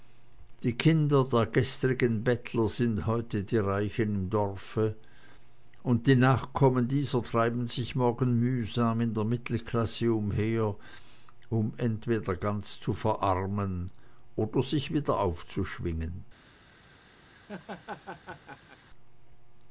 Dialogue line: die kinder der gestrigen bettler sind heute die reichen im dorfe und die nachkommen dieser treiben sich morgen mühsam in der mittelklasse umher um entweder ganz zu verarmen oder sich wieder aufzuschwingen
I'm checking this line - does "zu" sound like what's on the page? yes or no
yes